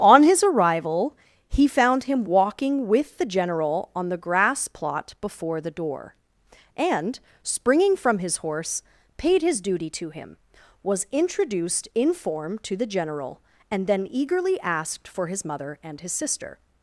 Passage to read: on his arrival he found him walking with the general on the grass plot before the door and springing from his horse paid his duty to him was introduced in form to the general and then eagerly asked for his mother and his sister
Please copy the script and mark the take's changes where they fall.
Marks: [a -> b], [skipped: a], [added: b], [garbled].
on his arrival he found him walking with the general on the grass plot before the door and springing from his horse paid his duty to him was introduced in form to the general and then eagerly asked for his mother and his sister